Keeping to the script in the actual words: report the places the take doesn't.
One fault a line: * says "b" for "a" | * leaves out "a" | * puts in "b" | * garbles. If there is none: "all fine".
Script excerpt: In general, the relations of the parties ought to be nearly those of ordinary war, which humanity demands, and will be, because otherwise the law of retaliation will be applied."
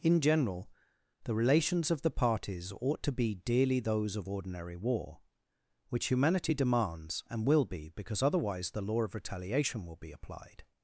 * says "dearly" for "nearly"